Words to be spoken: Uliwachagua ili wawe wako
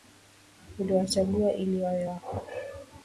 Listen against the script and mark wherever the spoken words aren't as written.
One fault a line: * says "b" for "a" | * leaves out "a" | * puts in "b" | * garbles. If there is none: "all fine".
all fine